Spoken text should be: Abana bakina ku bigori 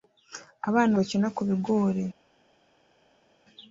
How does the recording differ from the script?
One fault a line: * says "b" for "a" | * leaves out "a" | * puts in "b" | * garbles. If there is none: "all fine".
all fine